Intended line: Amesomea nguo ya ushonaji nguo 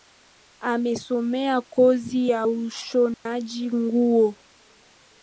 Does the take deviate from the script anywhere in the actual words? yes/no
yes